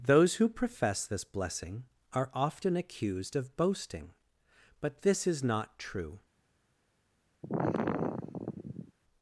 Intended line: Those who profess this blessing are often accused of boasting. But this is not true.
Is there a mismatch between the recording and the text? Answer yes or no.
no